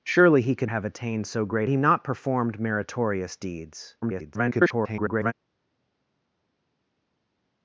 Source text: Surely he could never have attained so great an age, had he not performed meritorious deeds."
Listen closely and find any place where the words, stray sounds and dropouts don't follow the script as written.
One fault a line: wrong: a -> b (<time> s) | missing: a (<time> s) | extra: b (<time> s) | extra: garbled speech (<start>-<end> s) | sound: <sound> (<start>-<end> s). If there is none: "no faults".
missing: never (0.7 s)
missing: an age had (1.7 s)
extra: garbled speech (4.0-5.3 s)